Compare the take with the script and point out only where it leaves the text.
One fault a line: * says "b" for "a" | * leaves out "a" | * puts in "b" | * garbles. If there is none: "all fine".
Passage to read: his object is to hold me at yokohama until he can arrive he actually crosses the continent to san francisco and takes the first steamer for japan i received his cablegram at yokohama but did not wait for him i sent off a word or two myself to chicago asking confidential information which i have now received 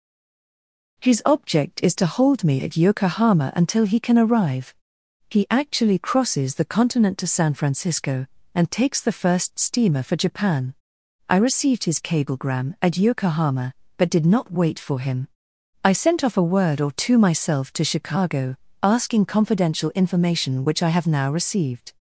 all fine